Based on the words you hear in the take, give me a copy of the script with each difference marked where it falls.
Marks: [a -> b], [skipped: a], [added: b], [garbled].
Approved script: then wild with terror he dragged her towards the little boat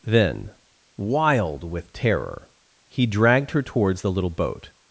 then wild with terror he dragged her towards the little boat